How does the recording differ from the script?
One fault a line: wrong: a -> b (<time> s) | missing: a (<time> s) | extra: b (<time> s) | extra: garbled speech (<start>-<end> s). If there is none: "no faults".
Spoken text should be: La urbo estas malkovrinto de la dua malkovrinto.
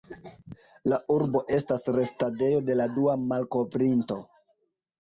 wrong: malkovrinto -> restadejo (2.0 s)